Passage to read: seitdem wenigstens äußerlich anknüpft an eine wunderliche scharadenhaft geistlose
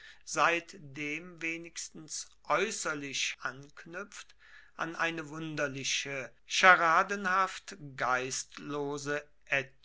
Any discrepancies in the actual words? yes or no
no